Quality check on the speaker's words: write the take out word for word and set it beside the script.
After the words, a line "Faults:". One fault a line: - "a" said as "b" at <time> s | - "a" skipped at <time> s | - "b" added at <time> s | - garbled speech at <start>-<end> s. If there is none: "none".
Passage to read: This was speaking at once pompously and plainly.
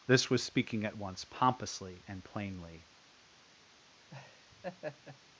This was speaking at once pompously and plainly.
Faults:
none